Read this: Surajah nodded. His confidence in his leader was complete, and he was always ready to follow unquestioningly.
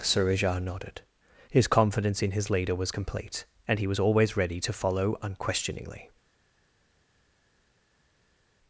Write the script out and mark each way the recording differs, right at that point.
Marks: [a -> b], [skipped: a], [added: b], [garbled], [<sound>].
Surajah nodded. His confidence in his leader was complete, and he was always ready to follow unquestioningly.